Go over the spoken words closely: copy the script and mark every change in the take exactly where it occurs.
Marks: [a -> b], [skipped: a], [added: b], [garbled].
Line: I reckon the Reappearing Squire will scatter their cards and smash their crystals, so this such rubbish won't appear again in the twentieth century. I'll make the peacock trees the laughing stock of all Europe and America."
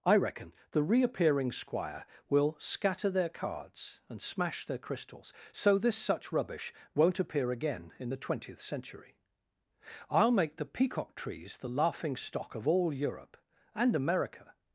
I reckon the Reappearing Squire will scatter their cards and smash their crystals, so this such rubbish won't appear again in the twentieth century. I'll make the peacock trees the laughing stock of all Europe and America."